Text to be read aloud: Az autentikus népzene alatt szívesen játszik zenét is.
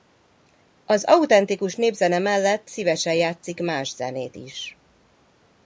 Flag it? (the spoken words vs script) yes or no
yes